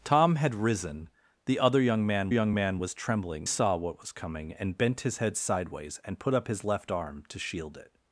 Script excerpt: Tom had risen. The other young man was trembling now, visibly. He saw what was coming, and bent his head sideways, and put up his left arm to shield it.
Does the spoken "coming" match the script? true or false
true